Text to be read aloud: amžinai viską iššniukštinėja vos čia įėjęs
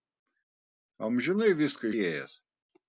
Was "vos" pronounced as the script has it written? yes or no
no